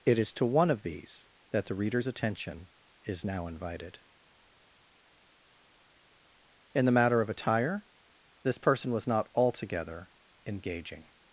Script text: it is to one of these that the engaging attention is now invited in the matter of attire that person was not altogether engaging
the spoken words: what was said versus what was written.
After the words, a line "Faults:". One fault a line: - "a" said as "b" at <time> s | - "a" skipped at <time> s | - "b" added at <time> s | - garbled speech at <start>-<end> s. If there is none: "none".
it is to one of these that the reader's attention is now invited in the matter of attire this person was not altogether engaging
Faults:
- "engaging" said as "reader's" at 1.8 s
- "that" said as "this" at 8.4 s